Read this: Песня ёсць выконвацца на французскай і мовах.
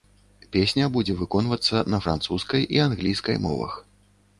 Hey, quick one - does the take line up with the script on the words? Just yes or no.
no